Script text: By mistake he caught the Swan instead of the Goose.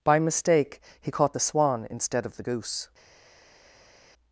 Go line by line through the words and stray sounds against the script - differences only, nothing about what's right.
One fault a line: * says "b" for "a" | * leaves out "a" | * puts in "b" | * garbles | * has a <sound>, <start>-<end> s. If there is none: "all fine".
all fine